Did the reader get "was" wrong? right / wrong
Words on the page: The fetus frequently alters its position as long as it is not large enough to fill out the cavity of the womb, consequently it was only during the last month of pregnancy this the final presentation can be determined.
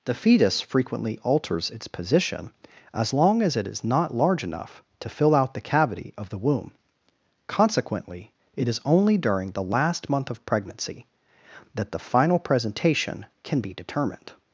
wrong